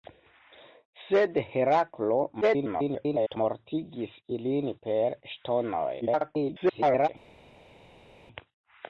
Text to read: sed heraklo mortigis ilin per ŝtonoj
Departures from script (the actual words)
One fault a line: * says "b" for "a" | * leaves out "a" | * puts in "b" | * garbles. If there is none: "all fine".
* garbles
* garbles